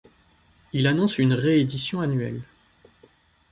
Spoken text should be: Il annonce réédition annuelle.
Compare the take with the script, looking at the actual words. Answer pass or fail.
fail